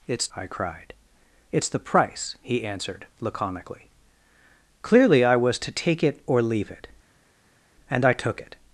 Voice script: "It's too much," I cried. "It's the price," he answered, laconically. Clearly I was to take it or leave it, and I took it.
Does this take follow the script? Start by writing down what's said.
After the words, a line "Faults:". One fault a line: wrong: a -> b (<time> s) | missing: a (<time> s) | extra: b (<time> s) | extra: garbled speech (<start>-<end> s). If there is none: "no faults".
"It's," I cried. "It's the price," he answered, laconically. Clearly I was to take it or leave it, and I took it.
Faults:
missing: too much (0.3 s)